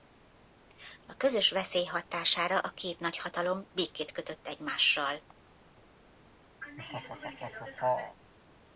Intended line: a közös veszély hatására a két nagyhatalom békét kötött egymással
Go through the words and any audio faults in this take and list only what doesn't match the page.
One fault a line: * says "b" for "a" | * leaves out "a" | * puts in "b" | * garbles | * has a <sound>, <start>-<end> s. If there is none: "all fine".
* has a laugh, 6.6-8.2 s